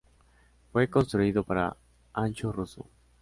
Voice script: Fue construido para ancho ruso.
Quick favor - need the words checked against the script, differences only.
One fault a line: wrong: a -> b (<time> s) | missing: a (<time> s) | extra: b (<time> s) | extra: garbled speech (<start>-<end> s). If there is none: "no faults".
no faults